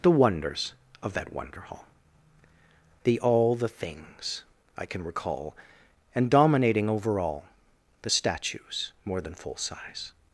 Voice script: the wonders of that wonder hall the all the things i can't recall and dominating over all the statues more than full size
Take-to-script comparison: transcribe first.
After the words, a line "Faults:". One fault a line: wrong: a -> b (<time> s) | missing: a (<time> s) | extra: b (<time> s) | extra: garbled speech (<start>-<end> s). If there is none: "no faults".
the wonders of that wonder hall the all the things i can recall and dominating over all the statues more than full size
Faults:
wrong: can't -> can (4.8 s)